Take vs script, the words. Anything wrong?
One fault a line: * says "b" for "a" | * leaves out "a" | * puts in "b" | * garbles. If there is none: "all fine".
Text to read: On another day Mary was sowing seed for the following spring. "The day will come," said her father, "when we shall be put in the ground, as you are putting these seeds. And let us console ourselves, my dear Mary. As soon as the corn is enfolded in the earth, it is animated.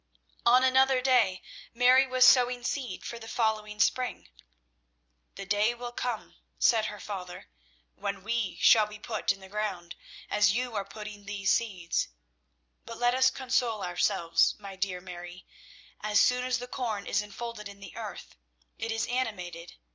* says "But" for "And"